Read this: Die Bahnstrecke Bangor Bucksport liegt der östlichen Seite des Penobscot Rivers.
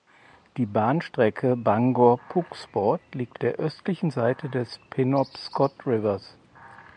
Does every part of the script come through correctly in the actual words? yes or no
yes